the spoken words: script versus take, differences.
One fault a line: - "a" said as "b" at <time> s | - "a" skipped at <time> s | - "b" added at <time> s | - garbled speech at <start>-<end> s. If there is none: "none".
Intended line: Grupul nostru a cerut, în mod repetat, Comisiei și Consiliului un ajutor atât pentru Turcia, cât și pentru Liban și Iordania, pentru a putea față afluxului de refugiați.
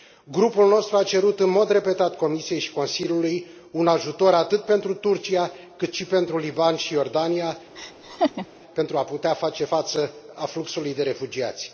- "face" added at 9.3 s